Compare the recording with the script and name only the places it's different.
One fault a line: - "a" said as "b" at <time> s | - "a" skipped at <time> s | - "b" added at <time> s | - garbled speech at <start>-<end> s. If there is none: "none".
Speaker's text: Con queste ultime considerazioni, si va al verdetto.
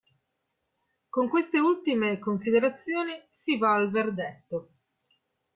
none